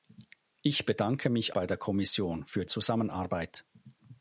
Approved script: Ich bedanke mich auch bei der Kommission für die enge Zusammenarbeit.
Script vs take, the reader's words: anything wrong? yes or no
yes